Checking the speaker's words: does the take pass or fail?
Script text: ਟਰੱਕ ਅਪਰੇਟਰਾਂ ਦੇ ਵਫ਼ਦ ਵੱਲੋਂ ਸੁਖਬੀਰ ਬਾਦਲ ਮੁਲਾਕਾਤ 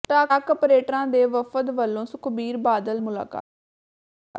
pass